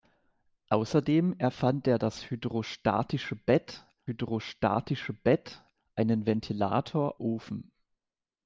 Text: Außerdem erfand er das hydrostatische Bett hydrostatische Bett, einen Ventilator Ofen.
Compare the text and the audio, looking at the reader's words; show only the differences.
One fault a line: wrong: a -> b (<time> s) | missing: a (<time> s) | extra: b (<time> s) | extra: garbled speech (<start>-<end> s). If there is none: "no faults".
no faults